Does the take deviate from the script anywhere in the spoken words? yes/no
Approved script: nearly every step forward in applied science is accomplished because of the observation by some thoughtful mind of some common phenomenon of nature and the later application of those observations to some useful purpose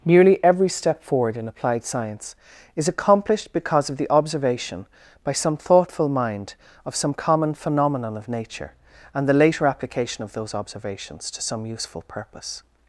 no